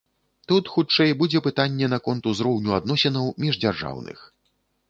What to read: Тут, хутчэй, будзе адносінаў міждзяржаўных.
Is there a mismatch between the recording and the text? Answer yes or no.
yes